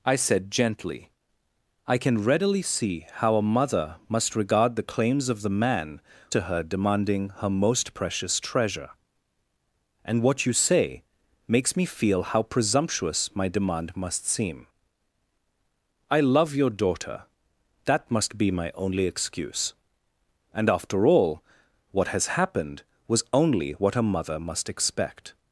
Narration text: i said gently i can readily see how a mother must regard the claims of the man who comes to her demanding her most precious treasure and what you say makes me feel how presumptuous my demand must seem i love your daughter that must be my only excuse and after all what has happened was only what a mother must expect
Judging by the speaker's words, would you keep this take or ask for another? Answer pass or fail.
fail